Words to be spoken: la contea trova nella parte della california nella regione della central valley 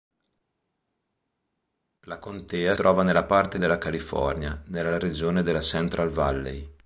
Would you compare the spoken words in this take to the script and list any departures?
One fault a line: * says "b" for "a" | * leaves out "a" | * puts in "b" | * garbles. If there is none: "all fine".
all fine